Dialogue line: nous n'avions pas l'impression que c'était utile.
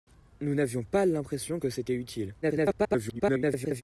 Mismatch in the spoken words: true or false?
true